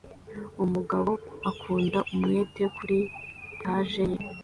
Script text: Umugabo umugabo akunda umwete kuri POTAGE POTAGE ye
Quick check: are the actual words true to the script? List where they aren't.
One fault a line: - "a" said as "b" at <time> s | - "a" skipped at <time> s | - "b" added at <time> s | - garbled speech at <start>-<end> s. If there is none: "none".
- "umugabo" skipped at 1.1 s
- "POTAGE" skipped at 4.0 s